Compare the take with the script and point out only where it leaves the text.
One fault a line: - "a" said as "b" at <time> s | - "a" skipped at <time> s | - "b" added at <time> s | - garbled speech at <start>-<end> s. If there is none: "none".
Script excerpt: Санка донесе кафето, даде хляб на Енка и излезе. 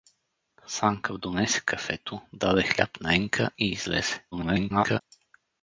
- garbled speech at 4.3-5.0 s